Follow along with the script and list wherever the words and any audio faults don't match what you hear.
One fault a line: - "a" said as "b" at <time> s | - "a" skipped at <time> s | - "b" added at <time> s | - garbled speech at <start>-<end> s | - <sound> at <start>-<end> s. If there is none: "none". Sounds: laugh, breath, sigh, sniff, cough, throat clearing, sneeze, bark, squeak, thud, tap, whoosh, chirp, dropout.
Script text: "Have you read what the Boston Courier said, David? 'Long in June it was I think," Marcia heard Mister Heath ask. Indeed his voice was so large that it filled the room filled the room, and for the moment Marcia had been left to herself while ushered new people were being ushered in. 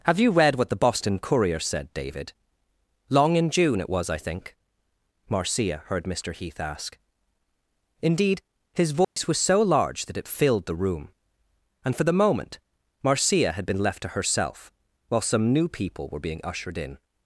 - dropout at 9.0-9.2 s
- "filled the room" skipped at 11.1 s
- "ushered" said as "some" at 15.2 s